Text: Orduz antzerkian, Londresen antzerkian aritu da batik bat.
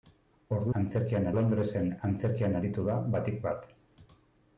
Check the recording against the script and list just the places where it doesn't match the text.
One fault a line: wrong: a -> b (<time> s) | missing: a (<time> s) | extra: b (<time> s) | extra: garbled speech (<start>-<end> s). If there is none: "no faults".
no faults